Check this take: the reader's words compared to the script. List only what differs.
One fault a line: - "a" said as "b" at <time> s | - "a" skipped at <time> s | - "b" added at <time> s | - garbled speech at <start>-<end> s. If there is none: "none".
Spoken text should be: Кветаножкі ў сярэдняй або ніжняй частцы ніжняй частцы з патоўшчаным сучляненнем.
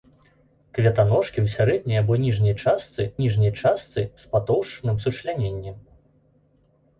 none